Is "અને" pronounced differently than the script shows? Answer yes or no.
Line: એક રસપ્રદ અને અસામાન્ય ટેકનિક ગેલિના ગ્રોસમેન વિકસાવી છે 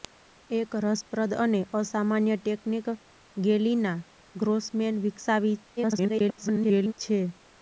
no